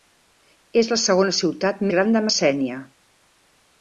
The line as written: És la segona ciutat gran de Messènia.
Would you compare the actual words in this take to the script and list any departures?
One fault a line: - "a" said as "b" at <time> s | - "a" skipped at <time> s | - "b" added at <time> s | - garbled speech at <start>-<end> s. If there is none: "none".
none